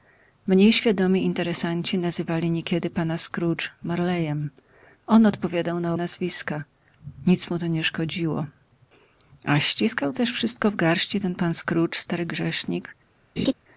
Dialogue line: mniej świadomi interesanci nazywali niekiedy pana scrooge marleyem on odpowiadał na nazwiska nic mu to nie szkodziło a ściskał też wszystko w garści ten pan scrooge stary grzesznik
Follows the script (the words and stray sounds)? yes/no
no